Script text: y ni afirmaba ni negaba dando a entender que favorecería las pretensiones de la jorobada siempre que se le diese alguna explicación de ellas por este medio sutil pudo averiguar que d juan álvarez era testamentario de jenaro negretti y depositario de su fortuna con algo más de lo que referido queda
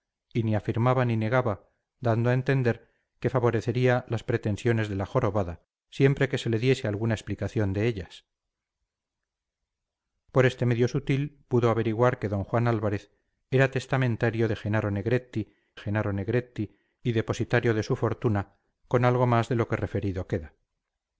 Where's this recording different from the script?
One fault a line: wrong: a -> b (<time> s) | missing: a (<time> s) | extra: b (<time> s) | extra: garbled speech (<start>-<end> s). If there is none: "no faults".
extra: jenaro negretti (15.8 s)